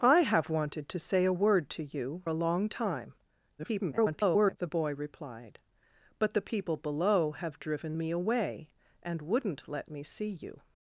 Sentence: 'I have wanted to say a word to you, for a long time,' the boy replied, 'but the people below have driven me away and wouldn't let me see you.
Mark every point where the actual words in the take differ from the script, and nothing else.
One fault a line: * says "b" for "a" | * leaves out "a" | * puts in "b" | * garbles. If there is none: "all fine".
* leaves out "for"
* garbles